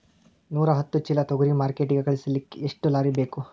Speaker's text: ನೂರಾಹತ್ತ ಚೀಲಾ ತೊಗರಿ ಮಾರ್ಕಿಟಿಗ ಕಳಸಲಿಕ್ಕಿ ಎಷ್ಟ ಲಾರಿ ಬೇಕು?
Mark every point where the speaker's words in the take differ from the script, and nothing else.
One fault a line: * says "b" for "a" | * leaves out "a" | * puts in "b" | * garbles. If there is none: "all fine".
all fine